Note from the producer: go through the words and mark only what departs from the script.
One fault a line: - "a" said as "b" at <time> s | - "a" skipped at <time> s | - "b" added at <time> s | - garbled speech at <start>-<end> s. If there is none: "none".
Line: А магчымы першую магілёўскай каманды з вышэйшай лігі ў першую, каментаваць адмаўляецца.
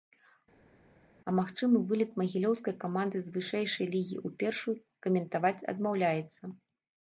- "першую" said as "вылет" at 1.9 s